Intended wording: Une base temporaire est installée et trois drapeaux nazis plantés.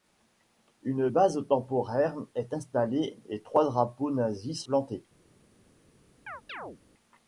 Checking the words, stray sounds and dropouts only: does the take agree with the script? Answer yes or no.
no